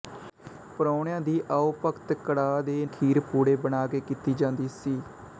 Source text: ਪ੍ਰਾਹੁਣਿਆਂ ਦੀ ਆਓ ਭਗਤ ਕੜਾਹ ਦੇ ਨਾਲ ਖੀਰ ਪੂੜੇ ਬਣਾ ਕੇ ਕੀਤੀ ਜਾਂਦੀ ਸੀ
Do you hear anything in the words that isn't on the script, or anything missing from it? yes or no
yes